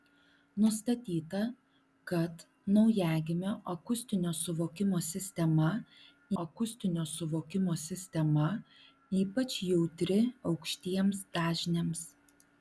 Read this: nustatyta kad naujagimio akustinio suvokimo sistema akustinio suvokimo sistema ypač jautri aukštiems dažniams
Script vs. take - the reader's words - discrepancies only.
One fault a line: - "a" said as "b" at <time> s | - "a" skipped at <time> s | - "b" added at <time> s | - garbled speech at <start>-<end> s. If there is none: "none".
none